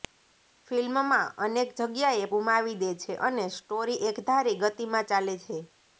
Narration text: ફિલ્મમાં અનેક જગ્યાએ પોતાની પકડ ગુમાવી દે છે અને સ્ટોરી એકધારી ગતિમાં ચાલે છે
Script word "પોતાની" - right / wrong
wrong